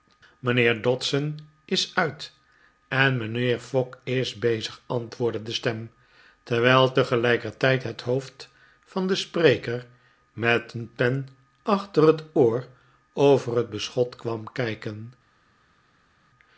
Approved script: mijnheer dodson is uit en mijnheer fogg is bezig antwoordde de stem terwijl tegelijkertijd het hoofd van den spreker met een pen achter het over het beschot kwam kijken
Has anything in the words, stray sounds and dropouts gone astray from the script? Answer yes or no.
yes